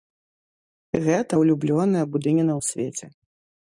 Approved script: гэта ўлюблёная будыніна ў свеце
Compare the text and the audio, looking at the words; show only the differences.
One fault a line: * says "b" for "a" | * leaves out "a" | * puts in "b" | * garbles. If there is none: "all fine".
all fine